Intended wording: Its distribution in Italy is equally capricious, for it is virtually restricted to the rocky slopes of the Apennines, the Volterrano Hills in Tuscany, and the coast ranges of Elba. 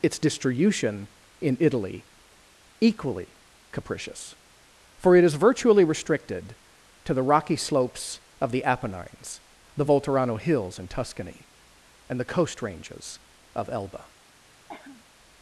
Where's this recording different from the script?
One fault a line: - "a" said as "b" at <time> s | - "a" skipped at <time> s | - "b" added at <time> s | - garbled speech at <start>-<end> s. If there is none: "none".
- "is" skipped at 2.0 s